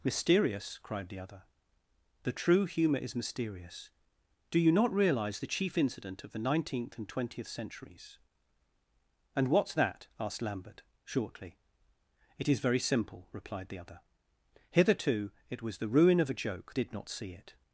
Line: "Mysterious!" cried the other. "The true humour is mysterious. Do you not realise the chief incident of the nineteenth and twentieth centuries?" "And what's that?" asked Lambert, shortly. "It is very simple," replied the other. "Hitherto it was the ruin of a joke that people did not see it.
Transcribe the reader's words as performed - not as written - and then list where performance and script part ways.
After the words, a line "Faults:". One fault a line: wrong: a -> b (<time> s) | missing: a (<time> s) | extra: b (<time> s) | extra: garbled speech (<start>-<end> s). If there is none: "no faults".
"Mysterious!" cried the other. "The true humour is mysterious. Do you not realise the chief incident of the nineteenth and twentieth centuries?" "And what's that?" asked Lambert, shortly. "It is very simple," replied the other. "Hitherto it was the ruin of a joke did not see it.
Faults:
missing: that people (16.8 s)